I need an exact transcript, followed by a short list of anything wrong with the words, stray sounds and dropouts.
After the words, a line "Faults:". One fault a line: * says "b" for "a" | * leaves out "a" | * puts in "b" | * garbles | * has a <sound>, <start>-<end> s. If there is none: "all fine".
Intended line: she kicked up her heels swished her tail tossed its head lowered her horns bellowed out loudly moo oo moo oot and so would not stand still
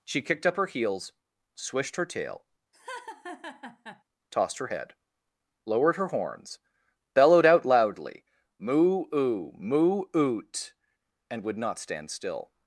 she kicked up her heels swished her tail tossed her head lowered her horns bellowed out loudly moo oo moo oot and would not stand still
Faults:
* has a laugh, 2.7-4.0 s
* says "her" for "its"
* leaves out "so"